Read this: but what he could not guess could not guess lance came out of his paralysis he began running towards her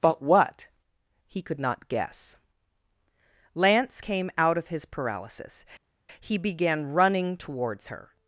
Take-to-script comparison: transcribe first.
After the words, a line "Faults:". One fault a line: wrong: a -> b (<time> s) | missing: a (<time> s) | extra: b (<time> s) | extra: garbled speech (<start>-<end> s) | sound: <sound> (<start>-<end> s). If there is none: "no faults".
but what he could not guess lance came out of his paralysis he began running towards her
Faults:
missing: could not guess (2.4 s)